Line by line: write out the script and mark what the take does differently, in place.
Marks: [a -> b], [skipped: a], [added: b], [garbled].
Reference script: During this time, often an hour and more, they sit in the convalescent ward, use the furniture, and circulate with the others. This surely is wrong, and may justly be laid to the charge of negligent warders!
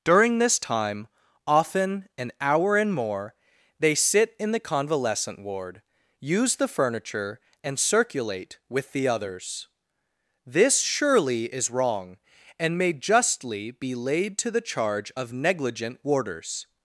During this time, often an hour and more, they sit in the convalescent ward, use the furniture, and circulate with the others. This surely is wrong, and may justly be laid to the charge of negligent warders!